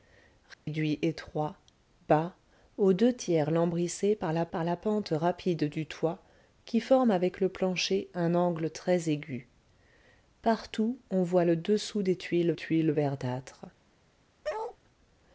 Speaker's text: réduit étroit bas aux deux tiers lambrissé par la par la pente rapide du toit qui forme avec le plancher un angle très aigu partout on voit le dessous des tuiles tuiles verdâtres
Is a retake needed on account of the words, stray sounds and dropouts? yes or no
yes